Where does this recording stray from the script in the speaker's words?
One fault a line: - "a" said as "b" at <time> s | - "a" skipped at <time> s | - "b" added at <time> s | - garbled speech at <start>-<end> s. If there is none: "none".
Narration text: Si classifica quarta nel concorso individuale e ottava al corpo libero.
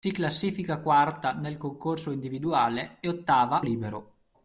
- "al corpo" skipped at 3.6 s